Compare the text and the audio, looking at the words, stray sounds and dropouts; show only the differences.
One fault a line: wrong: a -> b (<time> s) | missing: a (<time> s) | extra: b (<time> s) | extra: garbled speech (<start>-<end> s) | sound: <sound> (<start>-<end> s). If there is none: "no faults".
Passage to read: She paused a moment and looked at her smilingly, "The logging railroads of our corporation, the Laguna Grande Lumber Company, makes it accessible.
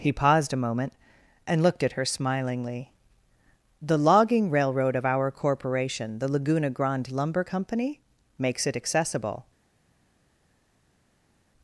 wrong: She -> He (0.0 s)
wrong: railroads -> railroad (4.5 s)